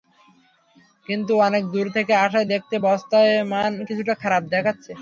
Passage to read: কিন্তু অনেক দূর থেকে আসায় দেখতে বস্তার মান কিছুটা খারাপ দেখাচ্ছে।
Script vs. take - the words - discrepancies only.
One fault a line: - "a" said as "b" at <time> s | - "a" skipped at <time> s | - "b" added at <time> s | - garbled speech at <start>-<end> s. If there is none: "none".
none